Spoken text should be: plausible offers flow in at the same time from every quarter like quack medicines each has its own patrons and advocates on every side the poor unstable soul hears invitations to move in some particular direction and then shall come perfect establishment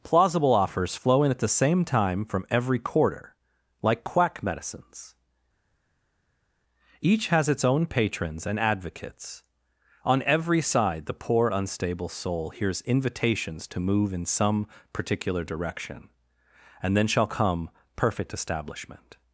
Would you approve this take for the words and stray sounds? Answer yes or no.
yes